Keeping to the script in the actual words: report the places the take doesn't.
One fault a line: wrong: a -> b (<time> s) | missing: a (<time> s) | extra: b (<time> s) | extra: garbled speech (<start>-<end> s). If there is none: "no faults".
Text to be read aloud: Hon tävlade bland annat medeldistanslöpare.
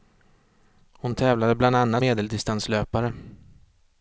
no faults